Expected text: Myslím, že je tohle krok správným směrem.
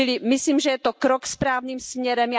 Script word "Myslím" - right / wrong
right